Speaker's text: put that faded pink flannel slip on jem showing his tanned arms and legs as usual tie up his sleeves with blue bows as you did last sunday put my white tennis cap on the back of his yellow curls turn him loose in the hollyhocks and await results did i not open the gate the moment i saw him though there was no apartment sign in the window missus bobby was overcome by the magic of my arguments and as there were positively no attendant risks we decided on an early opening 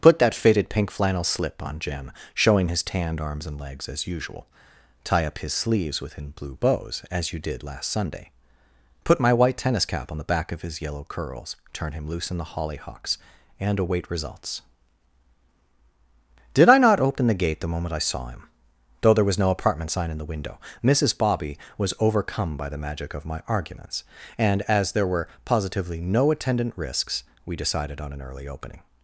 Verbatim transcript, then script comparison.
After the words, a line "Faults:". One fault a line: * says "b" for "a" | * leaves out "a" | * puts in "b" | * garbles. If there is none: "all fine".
put that faded pink flannel slip on jem showing his tanned arms and legs as usual tie up his sleeves within blue bows as you did last sunday put my white tennis cap on the back of his yellow curls turn him loose in the hollyhocks and await results did i not open the gate the moment i saw him though there was no apartment sign in the window missus bobby was overcome by the magic of my arguments and as there were positively no attendant risks we decided on an early opening
Faults:
* says "within" for "with"